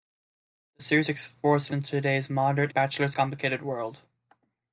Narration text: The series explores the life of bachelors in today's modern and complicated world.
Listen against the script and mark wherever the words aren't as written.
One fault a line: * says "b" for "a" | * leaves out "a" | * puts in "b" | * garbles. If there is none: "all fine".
* leaves out "life of bachelors"
* says "bachelors" for "and"